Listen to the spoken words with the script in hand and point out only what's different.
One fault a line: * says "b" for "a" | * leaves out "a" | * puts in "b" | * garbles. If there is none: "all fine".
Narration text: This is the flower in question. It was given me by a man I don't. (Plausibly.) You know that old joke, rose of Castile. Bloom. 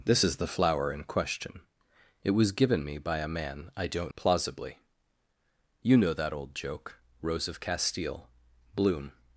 all fine